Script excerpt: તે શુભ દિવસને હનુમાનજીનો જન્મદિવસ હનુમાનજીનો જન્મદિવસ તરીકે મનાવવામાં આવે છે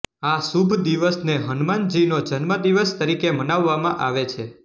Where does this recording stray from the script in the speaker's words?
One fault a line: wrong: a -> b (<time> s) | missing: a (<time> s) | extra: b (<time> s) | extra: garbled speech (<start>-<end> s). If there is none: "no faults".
wrong: તે -> આ (0.2 s)
missing: હનુમાનજીનો જન્મદિવસ (3.0 s)